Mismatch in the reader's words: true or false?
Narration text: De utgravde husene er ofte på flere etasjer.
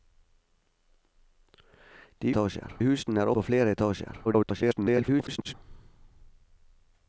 true